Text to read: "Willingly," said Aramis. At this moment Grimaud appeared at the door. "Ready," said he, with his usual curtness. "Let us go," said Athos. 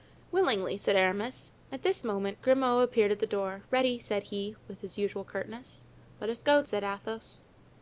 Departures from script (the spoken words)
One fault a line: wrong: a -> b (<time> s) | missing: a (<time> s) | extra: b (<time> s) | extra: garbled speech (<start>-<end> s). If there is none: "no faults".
no faults